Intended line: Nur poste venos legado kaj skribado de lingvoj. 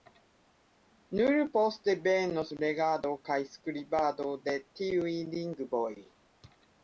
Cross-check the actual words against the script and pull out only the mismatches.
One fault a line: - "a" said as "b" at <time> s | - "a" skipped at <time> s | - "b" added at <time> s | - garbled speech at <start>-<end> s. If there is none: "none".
- "tiuj" added at 4.8 s